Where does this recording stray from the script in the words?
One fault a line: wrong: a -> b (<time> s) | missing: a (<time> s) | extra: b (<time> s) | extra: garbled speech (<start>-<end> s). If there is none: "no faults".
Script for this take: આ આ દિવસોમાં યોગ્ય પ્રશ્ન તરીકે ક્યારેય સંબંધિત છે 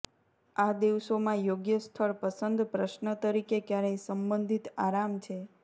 missing: આ (0.7 s)
extra: સ્થળ પસંદ (1.8 s)
extra: આરામ (4.8 s)